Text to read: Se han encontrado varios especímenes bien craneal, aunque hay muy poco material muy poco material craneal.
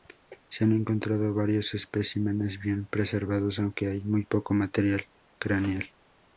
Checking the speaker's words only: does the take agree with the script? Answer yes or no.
no